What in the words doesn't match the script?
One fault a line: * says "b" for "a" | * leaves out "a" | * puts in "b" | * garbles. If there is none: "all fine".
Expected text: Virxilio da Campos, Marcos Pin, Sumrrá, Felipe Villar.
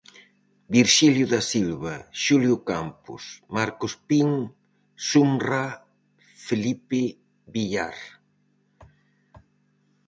* puts in "Silva Xulio"